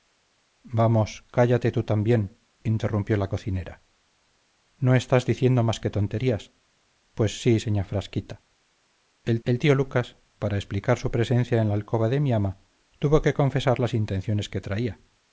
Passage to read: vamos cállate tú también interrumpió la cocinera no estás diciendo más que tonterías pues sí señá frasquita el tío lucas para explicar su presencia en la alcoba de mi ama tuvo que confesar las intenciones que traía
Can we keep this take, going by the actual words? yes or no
no